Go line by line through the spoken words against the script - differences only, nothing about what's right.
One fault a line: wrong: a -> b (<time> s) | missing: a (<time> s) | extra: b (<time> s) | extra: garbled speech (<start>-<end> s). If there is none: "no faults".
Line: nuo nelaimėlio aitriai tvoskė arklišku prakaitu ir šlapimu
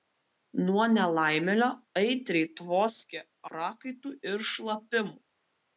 missing: arklišku (3.2 s)